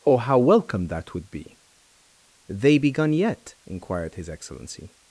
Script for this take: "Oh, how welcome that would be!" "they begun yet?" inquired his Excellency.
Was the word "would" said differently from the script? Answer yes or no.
no